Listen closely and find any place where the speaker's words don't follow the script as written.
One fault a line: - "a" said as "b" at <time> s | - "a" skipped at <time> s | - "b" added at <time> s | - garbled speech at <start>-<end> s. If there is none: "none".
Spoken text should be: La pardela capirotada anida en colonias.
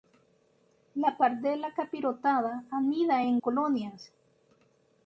none